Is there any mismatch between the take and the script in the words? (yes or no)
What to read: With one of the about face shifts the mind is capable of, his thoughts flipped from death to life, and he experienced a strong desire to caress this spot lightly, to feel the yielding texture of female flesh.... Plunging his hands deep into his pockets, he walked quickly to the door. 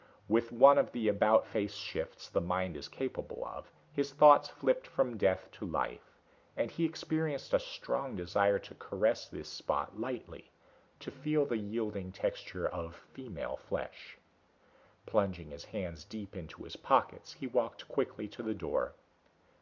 no